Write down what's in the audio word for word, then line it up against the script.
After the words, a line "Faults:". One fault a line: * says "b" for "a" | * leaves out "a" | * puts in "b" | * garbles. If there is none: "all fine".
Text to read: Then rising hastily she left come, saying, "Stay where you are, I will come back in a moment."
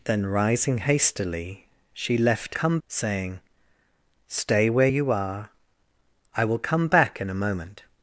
Then rising hastily she left come, saying, "Stay where you are, I will come back in a moment."
Faults:
all fine